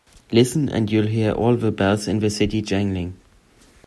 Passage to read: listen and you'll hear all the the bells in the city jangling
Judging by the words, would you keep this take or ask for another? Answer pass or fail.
fail